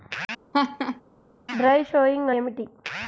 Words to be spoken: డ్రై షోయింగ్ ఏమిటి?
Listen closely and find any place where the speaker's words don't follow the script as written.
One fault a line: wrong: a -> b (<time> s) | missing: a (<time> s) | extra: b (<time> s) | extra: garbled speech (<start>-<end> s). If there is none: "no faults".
no faults